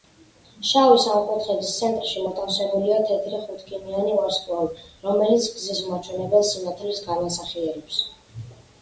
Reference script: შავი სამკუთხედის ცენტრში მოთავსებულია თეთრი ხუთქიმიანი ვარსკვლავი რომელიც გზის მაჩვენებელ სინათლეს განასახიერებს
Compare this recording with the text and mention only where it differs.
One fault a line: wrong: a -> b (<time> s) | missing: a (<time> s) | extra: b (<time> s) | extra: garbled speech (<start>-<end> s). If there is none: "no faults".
no faults